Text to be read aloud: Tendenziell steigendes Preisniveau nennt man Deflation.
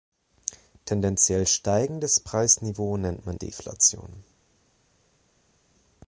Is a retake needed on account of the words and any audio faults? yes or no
no